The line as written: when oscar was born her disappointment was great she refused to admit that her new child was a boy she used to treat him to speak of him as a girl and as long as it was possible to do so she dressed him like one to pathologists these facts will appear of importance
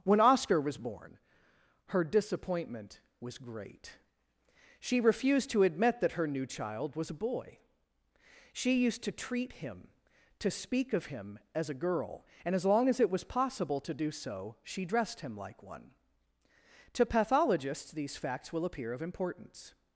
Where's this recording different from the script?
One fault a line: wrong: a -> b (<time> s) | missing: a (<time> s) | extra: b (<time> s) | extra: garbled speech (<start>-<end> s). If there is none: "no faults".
no faults